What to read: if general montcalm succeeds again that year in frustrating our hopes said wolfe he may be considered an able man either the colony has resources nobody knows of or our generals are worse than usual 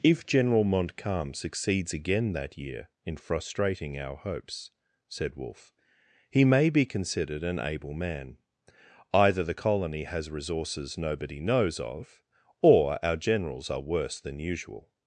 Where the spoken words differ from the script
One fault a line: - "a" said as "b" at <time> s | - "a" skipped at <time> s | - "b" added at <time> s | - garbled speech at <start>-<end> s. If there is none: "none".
none